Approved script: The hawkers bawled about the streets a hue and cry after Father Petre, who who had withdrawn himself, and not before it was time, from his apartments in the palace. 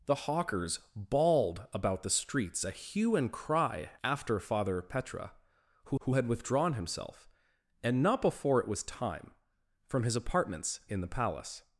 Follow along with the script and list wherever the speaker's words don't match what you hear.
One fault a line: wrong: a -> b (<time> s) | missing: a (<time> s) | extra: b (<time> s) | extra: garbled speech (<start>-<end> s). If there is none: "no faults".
no faults